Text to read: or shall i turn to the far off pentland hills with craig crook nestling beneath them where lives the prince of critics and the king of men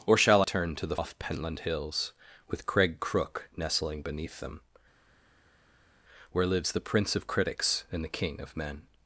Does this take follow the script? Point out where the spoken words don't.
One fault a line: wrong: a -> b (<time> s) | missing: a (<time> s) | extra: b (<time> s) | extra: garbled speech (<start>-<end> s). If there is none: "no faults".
missing: i (0.4 s)
missing: far (0.9 s)